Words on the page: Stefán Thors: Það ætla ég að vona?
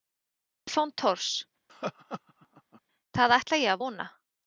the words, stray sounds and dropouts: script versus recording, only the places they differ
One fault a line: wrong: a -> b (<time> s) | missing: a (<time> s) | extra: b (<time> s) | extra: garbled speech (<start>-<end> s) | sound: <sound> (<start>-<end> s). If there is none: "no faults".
sound: laugh (1.7-2.8 s)